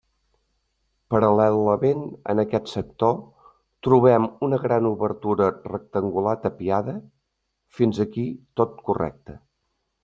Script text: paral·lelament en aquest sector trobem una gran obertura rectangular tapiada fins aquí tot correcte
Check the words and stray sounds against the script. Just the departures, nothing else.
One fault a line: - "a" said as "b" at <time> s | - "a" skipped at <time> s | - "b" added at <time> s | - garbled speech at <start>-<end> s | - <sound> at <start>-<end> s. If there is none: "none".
none